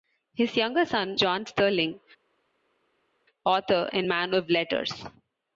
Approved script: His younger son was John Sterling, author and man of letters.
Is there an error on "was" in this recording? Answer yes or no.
yes